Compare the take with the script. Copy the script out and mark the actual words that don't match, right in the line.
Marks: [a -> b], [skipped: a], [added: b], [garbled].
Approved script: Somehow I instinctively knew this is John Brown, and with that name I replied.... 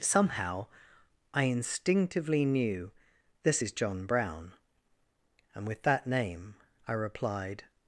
Somehow I instinctively knew this is John Brown, and with that name I replied....